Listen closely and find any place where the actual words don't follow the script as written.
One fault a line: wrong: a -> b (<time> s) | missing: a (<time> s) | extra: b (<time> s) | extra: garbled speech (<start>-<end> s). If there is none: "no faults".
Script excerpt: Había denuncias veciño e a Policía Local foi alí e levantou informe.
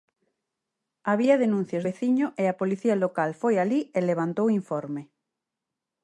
no faults